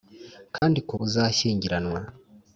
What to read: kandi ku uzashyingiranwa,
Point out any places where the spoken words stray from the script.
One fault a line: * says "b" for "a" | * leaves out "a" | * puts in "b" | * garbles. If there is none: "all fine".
all fine